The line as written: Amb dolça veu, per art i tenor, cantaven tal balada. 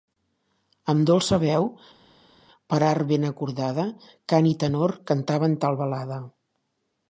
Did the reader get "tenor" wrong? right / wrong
right